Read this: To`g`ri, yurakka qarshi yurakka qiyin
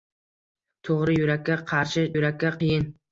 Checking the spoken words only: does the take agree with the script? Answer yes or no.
yes